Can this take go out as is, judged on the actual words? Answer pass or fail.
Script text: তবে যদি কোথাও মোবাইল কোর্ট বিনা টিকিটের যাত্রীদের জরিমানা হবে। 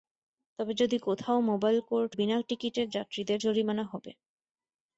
pass